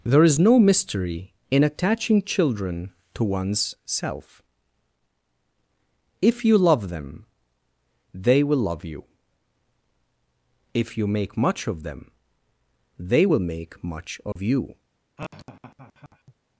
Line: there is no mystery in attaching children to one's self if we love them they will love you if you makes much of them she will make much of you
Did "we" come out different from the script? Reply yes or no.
yes